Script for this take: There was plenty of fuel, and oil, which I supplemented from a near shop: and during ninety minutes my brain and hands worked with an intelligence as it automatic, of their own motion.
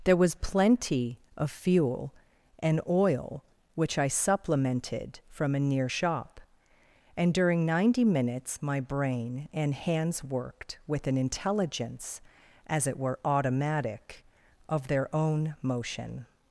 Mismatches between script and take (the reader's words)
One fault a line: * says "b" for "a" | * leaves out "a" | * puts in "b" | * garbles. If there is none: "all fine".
* puts in "were"